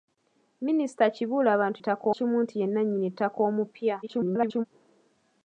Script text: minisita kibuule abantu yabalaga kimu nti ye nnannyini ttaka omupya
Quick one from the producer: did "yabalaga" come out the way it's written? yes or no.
no